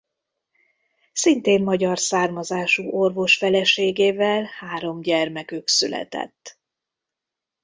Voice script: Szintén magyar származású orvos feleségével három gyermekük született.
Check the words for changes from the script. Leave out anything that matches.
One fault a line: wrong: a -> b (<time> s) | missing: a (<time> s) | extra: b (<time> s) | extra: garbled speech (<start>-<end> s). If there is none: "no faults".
no faults